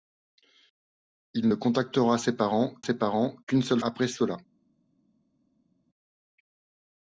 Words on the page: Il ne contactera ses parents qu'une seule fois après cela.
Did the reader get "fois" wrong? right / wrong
wrong